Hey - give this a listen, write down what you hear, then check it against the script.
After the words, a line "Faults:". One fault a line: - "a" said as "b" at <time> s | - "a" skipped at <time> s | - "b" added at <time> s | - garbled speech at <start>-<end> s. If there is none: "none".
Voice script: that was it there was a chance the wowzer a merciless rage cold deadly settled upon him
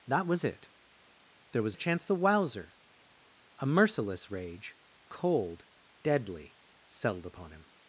that was it there was a chance the wowzer a merciless rage cold deadly settled upon him
Faults:
none